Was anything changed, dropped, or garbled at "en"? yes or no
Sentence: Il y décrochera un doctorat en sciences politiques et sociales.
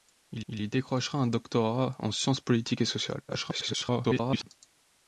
no